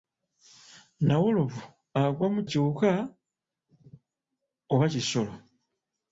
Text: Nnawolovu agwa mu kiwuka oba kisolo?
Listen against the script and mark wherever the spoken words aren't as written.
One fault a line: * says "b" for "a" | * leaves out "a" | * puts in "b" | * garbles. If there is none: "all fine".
all fine